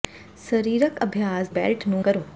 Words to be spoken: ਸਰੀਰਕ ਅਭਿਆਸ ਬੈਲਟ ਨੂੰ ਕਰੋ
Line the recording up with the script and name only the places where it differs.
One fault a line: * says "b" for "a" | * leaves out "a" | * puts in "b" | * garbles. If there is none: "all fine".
all fine